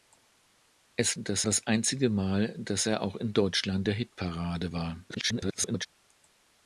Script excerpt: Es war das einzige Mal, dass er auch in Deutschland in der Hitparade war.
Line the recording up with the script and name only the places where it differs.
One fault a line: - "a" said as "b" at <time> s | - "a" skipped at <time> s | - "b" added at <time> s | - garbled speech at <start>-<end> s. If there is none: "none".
- "war" said as "dass" at 1.2 s
- "in" skipped at 3.9 s
- garbled speech at 5.1-5.9 s